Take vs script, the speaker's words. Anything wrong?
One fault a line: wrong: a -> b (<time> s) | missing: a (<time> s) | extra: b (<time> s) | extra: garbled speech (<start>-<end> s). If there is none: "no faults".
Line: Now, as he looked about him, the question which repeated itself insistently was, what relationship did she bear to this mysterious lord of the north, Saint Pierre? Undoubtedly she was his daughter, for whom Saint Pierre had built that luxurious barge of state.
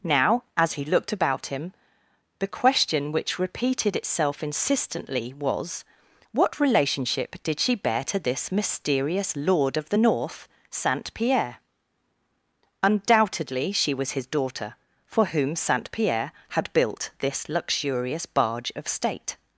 wrong: that -> this (17.2 s)